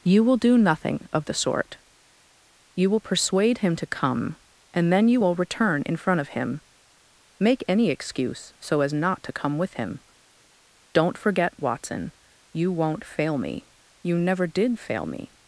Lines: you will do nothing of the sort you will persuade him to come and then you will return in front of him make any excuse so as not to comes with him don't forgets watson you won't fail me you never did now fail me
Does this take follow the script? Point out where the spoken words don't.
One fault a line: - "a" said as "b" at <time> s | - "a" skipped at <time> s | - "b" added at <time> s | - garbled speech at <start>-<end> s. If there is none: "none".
- "comes" said as "come" at 9.3 s
- "forgets" said as "forget" at 11.2 s
- "now" skipped at 14.8 s